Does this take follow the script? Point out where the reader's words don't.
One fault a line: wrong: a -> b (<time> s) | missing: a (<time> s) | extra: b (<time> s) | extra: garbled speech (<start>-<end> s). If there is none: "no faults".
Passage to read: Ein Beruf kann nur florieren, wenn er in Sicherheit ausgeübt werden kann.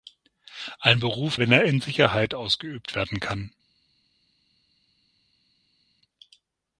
missing: kann nur florieren (1.4 s)